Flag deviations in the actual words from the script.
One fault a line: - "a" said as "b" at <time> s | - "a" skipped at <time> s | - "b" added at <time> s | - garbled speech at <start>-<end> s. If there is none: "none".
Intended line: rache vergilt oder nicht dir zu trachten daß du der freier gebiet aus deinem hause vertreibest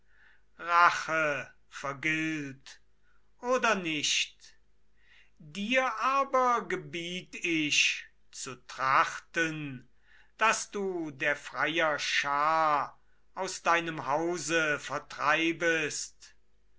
- "aber gebiet ich" added at 5.9 s
- "gebiet" said as "schar" at 12.0 s